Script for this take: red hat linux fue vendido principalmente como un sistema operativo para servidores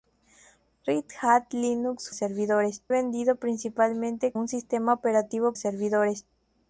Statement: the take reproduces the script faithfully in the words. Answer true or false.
false